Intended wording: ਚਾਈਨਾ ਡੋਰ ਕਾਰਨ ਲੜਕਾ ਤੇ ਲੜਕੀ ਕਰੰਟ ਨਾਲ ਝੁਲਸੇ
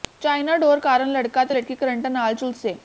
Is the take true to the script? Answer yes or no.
yes